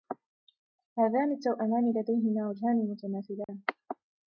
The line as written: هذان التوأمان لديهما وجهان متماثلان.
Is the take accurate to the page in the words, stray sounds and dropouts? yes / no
no